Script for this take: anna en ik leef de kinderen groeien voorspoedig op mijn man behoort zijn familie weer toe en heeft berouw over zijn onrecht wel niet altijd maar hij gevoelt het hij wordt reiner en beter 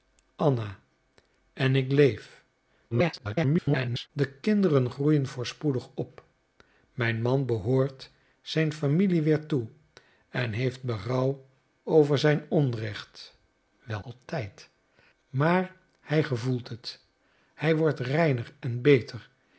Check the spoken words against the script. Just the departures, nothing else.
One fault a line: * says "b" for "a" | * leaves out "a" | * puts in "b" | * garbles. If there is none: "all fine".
* garbles
* leaves out "niet"